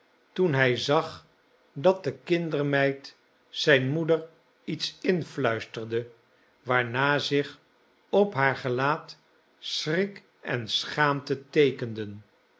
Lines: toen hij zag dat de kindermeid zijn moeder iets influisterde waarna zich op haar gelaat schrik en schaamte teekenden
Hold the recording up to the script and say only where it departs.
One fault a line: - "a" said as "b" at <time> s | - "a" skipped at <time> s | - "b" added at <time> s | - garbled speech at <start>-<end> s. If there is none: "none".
none